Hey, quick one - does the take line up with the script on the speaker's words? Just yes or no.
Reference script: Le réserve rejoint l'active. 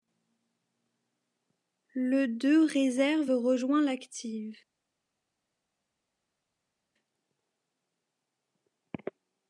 no